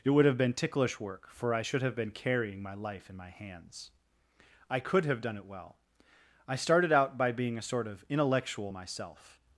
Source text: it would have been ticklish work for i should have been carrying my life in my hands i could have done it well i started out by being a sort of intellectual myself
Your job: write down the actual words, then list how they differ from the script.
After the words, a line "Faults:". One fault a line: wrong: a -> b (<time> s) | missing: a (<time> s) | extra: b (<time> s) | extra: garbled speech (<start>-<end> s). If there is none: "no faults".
it would have been ticklish work for i should have been carrying my life in my hands i could have done it well i started out by being a sort of intellectual myself
Faults:
no faults